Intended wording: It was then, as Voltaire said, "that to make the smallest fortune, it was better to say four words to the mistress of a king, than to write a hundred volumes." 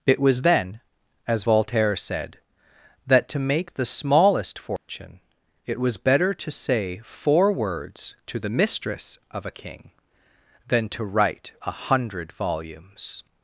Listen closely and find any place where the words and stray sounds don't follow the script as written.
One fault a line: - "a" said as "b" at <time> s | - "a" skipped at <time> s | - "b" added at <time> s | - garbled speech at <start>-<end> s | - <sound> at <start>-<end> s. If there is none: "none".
- dropout at 4.8-4.9 s